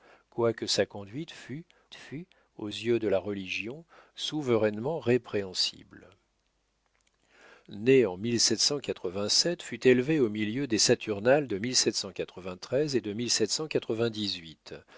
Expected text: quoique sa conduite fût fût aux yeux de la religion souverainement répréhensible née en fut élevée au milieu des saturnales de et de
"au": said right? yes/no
yes